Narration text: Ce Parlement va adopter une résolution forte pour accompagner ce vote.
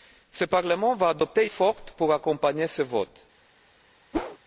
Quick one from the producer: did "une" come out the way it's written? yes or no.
no